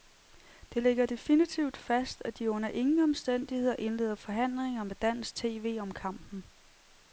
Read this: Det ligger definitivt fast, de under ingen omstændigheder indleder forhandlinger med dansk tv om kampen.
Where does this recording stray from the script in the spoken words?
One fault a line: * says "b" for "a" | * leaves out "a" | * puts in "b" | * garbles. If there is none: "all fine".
* puts in "at"